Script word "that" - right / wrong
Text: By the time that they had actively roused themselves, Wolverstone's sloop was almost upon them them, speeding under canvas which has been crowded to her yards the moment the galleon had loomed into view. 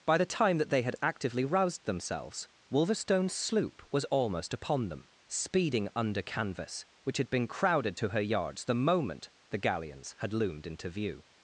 right